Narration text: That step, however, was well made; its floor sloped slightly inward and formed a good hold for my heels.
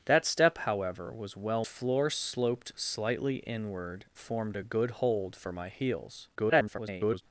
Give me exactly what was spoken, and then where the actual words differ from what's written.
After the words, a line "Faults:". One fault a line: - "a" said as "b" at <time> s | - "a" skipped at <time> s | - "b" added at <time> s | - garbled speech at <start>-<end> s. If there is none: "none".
That step, however, was well floor sloped slightly inward formed a good hold for my heels. [garbled]
Faults:
- "made its" skipped at 1.6 s
- "and" skipped at 4.0 s
- garbled speech at 6.3-7.2 s